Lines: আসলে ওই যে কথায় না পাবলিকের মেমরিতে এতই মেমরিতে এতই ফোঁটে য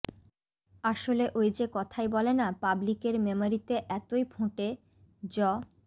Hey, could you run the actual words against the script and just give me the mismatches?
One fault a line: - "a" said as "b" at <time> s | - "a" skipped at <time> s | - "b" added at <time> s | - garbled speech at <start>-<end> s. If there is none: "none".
- "বলে" added at 2.1 s
- "মেমরিতে এতই" skipped at 4.2 s